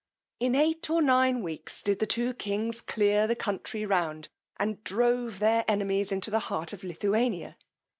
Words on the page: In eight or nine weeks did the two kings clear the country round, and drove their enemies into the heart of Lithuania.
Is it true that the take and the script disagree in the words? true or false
false